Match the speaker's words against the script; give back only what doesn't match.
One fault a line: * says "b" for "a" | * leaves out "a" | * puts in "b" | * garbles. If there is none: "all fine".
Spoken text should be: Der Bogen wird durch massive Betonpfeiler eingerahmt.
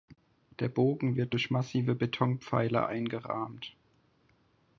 all fine